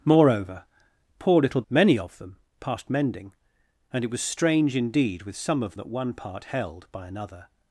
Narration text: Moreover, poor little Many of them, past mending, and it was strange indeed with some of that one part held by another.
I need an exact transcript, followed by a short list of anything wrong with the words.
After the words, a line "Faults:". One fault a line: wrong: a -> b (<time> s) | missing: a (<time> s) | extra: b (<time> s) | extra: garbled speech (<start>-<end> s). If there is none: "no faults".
Moreover, poor little Many of them, past mending, and it was strange indeed with some of that one part held by another.
Faults:
no faults